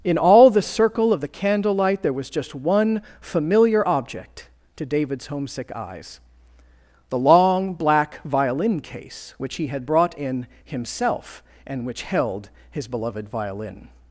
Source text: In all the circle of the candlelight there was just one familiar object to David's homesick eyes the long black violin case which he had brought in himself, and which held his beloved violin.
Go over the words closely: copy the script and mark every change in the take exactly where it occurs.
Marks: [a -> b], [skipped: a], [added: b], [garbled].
In all the circle of the candlelight there was just one familiar object to David's homesick eyes the long black violin case which he had brought in himself, and which held his beloved violin.